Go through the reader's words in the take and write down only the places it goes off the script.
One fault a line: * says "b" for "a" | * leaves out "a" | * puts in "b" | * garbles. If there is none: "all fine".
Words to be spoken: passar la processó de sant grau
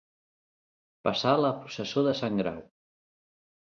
all fine